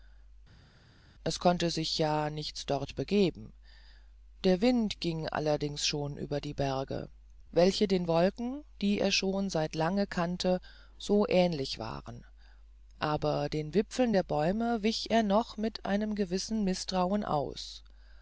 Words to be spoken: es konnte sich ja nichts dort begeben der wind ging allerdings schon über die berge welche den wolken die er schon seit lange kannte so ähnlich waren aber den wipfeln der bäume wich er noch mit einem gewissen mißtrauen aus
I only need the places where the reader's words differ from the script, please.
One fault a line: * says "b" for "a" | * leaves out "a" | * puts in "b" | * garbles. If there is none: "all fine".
all fine